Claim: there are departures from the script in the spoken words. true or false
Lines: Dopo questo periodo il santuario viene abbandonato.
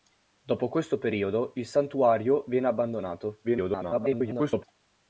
true